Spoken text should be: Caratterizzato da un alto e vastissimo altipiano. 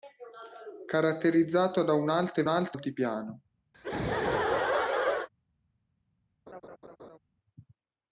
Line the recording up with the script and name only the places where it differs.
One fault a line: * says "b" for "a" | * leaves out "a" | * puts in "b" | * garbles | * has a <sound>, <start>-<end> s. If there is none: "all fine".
* says "alto" for "vastissimo"
* has a laugh, 3.7-5.3 s
* has a laugh, 6.5-7.2 s